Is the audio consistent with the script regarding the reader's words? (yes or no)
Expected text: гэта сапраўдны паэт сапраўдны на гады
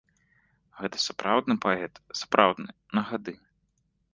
yes